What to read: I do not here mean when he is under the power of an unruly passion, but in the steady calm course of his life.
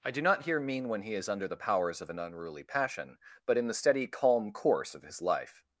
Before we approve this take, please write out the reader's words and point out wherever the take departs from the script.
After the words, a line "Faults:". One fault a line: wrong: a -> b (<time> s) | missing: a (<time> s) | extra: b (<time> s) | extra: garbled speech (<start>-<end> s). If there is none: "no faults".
I do not here mean when he is under the powers of an unruly passion, but in the steady calm course of his life.
Faults:
wrong: power -> powers (1.6 s)